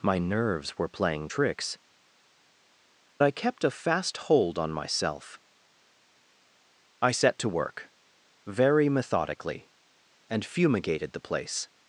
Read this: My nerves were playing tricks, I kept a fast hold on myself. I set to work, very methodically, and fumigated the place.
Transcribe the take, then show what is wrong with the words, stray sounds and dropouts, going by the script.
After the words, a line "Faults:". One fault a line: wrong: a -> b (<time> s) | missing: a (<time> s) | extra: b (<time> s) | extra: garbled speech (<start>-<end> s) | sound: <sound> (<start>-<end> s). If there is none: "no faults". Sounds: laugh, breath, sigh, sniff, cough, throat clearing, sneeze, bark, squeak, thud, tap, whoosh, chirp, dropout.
My nerves were playing tricks, I kept a fast hold on myself. I set to work, very methodically, and fumigated the place.
Faults:
no faults